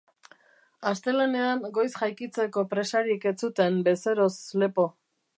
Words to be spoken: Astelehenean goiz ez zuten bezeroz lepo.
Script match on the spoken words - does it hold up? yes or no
no